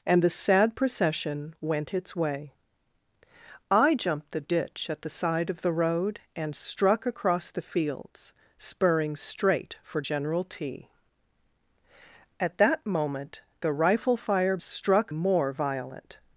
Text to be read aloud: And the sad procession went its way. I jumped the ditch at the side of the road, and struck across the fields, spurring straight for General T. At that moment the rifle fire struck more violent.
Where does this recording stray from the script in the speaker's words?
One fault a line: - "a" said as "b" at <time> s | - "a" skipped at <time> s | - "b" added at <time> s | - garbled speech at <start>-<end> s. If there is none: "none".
none